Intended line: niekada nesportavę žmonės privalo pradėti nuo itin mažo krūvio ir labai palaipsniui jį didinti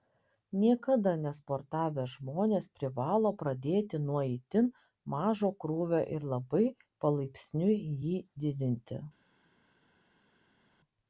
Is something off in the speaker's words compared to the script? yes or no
no